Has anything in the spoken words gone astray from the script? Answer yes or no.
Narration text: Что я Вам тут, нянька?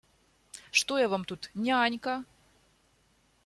no